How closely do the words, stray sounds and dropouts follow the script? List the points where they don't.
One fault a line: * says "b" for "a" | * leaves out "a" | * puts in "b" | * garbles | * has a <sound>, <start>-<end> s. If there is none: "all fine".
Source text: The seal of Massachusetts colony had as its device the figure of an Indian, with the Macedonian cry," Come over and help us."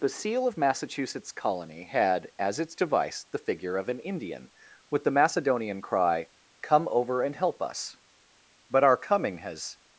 * puts in "But our coming has"